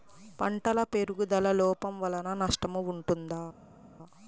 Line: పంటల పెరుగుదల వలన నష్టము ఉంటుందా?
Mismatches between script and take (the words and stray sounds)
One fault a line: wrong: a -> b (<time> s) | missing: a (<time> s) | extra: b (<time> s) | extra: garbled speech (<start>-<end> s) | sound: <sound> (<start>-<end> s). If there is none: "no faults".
extra: లోపం (1.5 s)